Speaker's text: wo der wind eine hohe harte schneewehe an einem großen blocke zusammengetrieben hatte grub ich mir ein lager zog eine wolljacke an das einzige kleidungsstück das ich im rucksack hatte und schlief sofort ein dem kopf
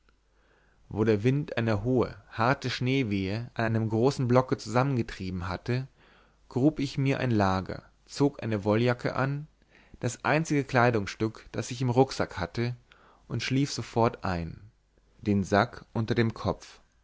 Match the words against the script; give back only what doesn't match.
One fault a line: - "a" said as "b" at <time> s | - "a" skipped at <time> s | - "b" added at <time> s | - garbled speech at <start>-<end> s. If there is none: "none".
- "den sack unter" added at 15.2 s